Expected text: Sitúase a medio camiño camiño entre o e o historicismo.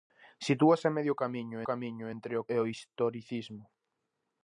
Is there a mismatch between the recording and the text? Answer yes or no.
no